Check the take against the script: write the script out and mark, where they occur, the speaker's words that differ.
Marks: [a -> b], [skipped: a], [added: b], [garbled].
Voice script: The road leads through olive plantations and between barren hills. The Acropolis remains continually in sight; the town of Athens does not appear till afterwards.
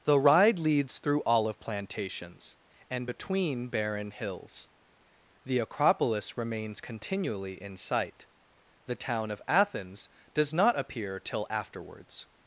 The [road -> ride] leads through olive plantations and between barren hills. The Acropolis remains continually in sight; the town of Athens does not appear till afterwards.